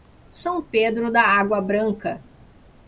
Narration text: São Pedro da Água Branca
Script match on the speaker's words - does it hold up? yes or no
yes